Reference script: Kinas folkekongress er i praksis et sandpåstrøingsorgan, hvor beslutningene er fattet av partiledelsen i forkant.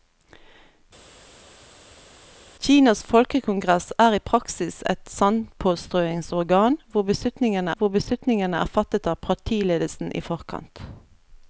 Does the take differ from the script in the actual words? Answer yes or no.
yes